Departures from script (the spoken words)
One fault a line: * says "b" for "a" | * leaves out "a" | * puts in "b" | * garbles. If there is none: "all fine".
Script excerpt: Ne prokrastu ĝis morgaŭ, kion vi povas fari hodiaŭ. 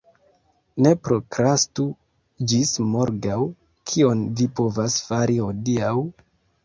all fine